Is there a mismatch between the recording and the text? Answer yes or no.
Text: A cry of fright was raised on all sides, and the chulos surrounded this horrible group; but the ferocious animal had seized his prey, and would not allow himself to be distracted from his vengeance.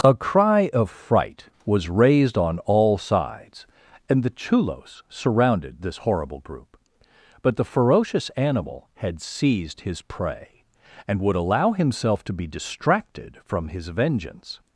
yes